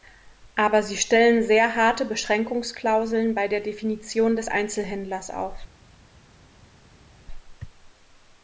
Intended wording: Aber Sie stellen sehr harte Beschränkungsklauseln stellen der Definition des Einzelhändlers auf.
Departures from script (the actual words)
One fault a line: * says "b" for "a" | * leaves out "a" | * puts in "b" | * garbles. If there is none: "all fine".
* says "bei" for "stellen"